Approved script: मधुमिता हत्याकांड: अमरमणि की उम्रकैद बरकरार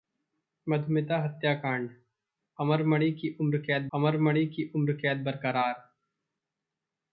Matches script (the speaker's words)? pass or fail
fail